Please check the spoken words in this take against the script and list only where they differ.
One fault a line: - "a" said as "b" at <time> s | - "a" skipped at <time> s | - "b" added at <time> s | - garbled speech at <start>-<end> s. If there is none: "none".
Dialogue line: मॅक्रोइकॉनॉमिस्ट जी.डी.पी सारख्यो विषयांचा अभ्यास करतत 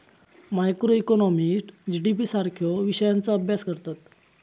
none